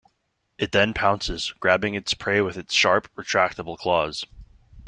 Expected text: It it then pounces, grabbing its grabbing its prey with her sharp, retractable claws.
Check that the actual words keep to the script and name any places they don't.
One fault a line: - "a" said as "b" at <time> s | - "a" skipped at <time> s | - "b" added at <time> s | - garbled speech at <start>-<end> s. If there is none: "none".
- "it" skipped at 0.7 s
- "grabbing its" skipped at 2.1 s
- "her" said as "its" at 2.6 s